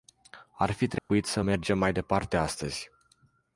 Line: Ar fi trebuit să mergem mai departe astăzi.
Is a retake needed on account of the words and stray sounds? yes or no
yes